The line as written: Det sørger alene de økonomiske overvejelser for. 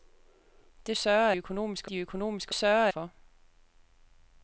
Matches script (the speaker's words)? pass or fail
fail